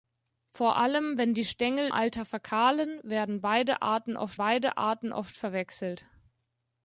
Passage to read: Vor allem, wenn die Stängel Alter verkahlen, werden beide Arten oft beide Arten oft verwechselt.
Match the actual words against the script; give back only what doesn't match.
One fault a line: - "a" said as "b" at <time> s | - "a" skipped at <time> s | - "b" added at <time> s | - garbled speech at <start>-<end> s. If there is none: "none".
none